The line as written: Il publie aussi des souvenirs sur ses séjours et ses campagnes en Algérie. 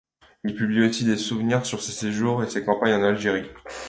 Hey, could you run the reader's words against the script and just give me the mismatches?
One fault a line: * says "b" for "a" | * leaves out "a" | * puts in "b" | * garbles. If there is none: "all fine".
all fine